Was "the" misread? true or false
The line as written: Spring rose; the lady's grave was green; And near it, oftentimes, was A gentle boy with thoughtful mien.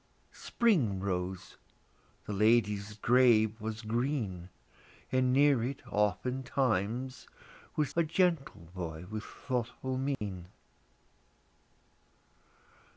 false